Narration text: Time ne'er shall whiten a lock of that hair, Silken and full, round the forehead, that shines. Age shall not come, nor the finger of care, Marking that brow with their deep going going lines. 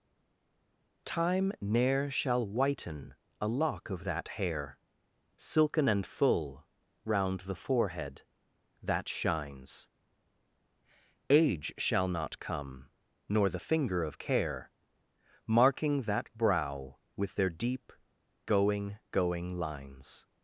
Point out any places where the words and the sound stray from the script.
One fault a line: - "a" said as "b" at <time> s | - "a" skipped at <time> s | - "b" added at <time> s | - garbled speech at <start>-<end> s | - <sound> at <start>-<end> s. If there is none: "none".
none